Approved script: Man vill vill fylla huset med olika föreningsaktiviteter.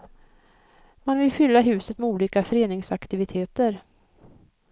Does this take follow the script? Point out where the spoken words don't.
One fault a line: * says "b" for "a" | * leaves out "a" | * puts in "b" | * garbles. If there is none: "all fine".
* leaves out "vill"